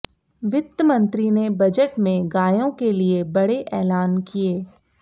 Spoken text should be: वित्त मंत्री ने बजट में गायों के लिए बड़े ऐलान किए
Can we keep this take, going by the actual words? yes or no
yes